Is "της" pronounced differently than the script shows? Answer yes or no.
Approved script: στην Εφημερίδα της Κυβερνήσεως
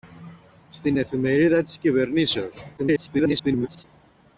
no